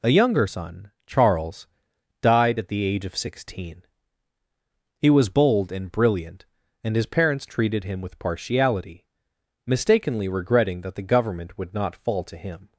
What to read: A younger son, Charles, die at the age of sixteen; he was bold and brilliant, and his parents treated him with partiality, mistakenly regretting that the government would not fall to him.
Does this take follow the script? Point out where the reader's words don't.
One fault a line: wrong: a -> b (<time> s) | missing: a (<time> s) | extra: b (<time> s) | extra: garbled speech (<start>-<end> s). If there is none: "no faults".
wrong: die -> died (2.2 s)